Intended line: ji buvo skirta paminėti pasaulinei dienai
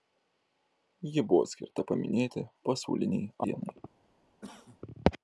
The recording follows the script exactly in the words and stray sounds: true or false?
false